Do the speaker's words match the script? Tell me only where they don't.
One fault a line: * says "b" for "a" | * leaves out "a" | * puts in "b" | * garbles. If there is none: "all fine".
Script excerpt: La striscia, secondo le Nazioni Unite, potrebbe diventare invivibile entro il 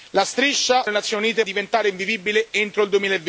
* leaves out "secondo"
* leaves out "potrebbe"